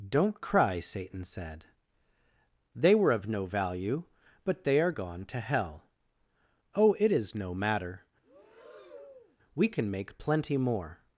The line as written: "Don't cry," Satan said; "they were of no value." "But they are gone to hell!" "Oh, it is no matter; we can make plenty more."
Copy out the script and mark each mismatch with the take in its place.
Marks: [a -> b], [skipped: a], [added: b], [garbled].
"Don't cry," Satan said; "they were of no value." "But they are gone to hell!" "Oh, it is no matter; we can make plenty more."